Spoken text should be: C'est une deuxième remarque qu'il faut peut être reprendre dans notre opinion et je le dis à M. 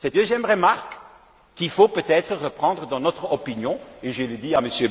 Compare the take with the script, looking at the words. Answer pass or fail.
fail